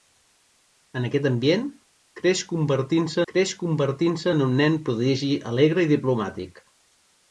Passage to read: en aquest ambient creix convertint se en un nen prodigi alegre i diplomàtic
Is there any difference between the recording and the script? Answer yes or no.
yes